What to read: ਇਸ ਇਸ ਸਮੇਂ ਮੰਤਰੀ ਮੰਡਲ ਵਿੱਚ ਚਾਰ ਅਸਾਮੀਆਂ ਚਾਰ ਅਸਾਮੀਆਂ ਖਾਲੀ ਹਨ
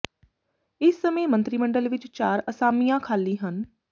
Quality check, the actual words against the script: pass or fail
fail